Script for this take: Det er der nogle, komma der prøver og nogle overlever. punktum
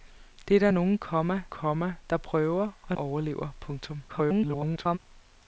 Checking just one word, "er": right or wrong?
right